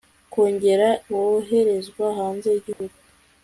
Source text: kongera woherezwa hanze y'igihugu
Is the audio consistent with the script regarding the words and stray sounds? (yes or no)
no